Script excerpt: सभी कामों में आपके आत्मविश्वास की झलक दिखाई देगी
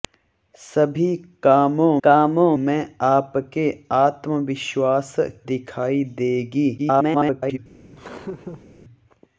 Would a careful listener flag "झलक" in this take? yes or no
yes